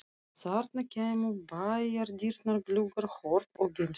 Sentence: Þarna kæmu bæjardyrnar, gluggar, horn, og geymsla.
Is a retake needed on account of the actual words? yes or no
no